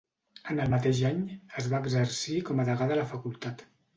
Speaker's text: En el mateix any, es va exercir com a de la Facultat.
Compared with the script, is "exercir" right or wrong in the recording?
right